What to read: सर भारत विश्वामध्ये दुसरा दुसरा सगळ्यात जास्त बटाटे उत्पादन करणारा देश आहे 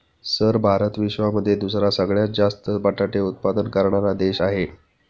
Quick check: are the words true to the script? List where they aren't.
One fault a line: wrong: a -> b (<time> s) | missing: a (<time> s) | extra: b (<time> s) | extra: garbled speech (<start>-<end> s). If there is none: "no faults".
missing: दुसरा (1.9 s)